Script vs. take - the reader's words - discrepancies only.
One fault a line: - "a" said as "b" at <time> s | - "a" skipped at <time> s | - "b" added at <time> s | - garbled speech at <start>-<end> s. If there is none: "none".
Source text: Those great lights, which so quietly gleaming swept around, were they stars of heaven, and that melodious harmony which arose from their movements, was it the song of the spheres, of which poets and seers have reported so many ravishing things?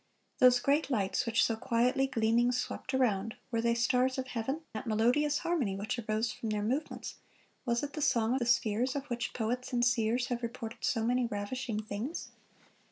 - "and" skipped at 4.6 s
- "of" skipped at 8.4 s